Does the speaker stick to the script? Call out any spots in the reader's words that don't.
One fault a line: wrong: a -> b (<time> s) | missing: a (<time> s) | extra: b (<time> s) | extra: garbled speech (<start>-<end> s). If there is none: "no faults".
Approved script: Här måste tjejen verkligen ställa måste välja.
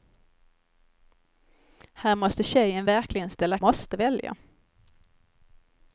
no faults